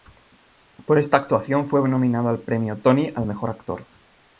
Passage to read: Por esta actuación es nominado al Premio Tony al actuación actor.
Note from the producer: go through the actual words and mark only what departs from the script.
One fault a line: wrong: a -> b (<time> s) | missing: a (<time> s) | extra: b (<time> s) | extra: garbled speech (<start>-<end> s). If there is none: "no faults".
wrong: es -> fue (1.7 s)
wrong: actuación -> mejor (3.3 s)